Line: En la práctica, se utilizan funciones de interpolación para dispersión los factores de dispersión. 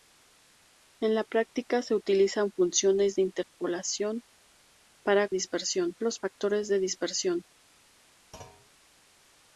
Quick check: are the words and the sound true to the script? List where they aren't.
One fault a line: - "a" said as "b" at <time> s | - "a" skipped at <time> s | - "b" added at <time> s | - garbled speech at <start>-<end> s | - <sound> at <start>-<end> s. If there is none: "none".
- dropout at 3.4-3.6 s
- thud at 8.3-8.7 s